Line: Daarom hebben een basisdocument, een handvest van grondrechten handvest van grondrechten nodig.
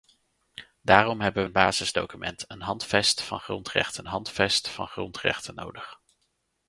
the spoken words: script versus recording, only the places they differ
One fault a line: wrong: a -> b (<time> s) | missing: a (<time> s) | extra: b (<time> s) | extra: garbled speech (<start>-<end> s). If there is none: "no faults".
no faults